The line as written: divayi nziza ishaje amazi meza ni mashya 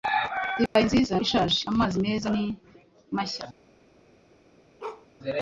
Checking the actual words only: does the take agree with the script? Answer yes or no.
yes